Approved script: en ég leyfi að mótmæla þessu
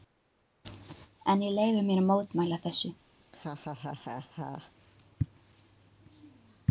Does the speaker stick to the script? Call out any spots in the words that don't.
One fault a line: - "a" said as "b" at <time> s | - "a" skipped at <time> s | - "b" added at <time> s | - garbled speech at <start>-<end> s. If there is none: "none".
- "mér" added at 1.9 s